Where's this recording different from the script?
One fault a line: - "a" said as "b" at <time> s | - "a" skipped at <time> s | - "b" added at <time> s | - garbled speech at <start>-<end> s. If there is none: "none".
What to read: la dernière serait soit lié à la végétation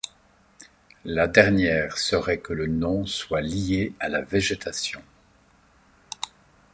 - "que le nom" added at 2.4 s